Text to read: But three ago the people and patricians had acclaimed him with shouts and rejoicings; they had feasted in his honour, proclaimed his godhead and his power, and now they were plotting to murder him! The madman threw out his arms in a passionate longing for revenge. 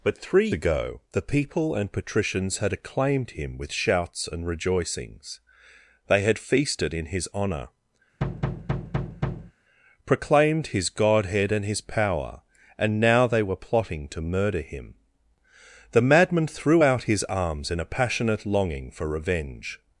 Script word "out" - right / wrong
right